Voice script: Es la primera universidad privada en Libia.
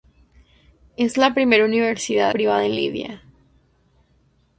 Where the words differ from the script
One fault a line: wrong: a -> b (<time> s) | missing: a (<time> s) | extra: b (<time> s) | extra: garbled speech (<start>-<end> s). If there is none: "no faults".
no faults